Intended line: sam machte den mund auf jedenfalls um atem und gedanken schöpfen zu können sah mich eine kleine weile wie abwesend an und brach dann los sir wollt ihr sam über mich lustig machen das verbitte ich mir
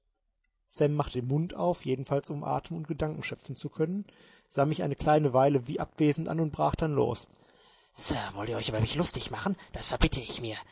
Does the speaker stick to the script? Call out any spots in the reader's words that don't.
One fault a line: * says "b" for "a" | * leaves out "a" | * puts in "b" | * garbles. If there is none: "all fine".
* says "euch" for "sam"